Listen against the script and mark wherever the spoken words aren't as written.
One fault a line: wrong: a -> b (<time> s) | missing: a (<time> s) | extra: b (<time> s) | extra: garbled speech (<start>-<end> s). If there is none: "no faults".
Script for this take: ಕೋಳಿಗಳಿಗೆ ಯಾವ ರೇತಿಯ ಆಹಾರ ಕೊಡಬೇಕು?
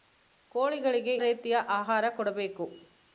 missing: ಯಾವ (1.2 s)